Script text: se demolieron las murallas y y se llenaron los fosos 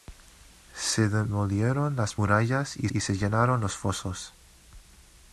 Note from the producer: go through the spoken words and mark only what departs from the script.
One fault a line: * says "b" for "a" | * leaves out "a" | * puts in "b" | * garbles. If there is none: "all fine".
all fine